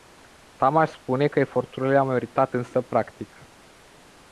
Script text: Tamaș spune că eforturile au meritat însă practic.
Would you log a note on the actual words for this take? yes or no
no